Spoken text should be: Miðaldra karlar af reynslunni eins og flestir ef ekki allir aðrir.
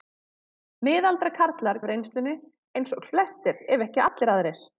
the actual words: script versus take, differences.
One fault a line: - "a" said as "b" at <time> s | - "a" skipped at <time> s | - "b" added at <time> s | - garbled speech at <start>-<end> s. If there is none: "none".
none